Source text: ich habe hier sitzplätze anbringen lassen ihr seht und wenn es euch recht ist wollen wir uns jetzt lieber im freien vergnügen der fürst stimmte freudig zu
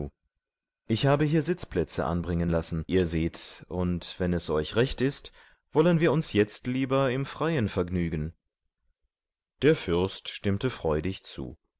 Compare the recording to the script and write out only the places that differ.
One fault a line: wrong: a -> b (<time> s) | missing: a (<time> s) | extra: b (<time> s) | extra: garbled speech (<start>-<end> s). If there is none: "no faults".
no faults